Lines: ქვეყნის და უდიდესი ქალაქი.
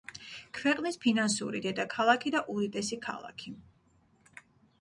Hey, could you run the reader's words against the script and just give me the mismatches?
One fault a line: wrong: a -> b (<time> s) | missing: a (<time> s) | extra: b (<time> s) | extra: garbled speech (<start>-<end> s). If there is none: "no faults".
extra: ფინანსური დედაქალაქი (1.0 s)